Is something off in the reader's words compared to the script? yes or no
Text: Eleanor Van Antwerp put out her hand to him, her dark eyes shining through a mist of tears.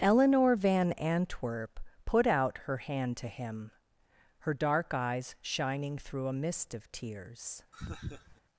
no